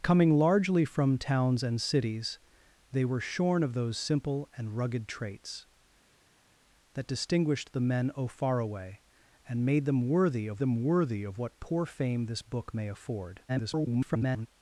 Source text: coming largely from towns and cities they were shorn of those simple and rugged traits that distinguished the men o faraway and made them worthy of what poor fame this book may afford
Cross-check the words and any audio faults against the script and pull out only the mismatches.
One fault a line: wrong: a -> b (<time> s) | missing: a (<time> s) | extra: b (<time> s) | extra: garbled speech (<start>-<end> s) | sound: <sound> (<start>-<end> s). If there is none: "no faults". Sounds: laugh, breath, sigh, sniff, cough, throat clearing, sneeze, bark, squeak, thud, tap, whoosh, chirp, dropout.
extra: them worthy of (10.6 s)
extra: garbled speech (13.5-14.5 s)